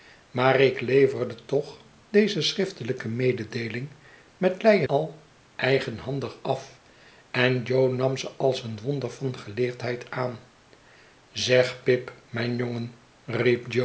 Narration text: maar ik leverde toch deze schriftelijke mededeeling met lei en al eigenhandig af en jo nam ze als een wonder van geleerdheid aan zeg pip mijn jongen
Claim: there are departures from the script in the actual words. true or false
true